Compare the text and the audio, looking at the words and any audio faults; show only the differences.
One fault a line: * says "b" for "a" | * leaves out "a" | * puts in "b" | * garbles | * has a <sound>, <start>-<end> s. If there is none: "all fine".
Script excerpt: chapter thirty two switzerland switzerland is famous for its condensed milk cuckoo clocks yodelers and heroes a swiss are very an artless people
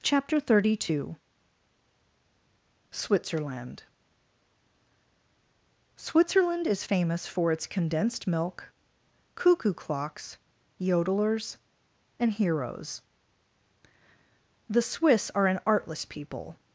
* says "the" for "a"
* leaves out "very"